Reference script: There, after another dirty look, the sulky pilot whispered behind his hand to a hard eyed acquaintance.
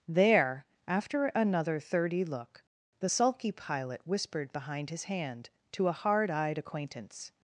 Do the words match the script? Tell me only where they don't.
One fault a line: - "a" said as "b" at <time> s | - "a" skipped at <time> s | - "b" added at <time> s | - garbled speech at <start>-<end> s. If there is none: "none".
- "dirty" said as "thirty" at 1.8 s